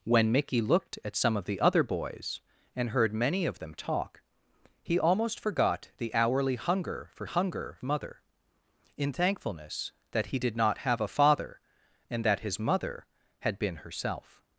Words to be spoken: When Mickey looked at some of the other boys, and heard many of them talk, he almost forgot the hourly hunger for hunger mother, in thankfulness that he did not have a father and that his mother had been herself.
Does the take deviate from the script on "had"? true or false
false